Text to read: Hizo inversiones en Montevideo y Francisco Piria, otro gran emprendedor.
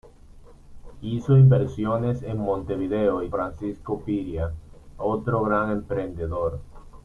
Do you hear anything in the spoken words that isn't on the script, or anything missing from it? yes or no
no